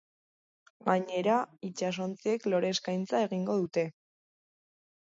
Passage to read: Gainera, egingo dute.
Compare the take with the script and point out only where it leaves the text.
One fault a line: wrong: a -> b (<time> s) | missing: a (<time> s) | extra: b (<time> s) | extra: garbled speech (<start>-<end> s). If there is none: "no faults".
extra: itsasontziek lore eskaintza (1.7 s)